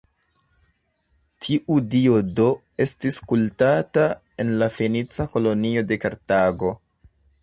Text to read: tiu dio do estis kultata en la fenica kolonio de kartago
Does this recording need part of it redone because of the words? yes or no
no